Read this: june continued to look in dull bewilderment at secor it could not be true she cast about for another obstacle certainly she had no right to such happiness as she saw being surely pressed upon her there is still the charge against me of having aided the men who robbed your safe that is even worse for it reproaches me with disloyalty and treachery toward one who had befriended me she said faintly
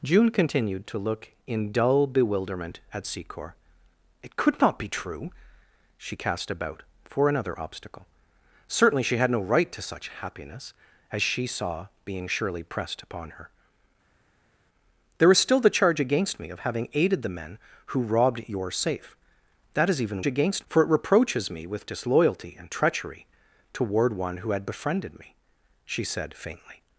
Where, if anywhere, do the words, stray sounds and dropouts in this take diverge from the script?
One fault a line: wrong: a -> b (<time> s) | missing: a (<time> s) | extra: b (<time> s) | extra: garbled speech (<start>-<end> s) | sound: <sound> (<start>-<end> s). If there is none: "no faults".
wrong: worse -> against (20.2 s)